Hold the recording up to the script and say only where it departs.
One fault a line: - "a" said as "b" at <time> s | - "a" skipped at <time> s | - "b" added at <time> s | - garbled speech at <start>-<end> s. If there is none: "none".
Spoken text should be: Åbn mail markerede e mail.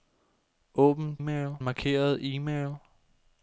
none